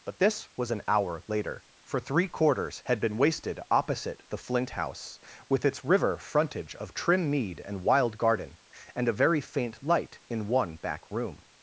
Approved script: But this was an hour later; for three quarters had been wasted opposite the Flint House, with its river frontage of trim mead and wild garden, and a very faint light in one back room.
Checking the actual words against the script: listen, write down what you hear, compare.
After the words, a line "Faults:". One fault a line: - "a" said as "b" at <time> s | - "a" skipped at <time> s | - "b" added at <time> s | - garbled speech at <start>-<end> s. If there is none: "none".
But this was an hour later; for three quarters had been wasted opposite the Flint House, with its river frontage of trim mead and wild garden, and a very faint light in one back room.
Faults:
none